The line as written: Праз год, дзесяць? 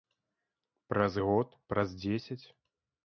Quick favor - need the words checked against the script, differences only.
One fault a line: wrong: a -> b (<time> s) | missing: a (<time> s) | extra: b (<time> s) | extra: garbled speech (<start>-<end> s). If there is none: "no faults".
extra: праз (1.8 s)